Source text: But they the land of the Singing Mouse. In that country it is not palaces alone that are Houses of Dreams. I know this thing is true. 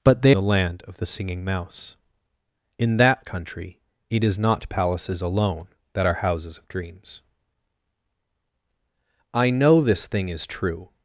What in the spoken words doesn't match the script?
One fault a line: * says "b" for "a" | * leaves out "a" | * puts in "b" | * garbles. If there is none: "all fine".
all fine